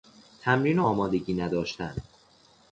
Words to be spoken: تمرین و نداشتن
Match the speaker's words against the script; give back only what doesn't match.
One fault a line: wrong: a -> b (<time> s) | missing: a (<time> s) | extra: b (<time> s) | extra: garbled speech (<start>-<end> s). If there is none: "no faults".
extra: آمادگی (0.8 s)